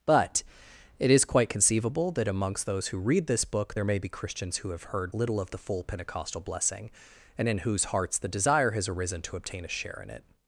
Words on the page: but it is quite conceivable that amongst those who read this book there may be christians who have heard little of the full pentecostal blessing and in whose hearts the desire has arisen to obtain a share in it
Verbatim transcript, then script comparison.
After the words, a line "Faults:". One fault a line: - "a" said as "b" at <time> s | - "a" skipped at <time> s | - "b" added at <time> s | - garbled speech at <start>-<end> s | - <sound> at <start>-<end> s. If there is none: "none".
but it is quite conceivable that amongst those who read this book there may be christians who have heard little of the full pentecostal blessing and in whose hearts the desire has arisen to obtain a share in it
Faults:
none